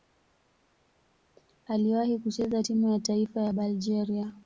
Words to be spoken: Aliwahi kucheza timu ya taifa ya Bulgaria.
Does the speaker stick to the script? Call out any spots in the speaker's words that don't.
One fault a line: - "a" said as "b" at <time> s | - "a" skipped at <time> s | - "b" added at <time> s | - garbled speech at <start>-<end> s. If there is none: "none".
none